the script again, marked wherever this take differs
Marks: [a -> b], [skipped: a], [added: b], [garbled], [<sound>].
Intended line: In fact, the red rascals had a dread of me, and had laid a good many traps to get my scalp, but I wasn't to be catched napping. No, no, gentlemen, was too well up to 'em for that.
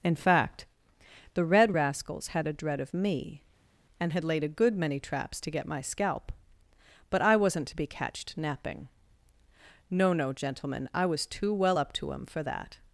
In fact, the red rascals had a dread of me, and had laid a good many traps to get my scalp, but I wasn't to be catched napping. No, no, gentlemen, [added: I] was too well up to 'em for that.